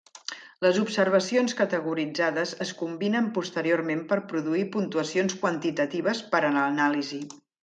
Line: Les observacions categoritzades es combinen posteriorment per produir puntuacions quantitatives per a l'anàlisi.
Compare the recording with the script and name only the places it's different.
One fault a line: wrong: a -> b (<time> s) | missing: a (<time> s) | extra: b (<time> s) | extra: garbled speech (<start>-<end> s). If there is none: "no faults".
no faults